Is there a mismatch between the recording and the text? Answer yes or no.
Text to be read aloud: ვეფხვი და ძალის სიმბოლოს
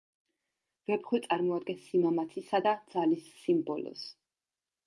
yes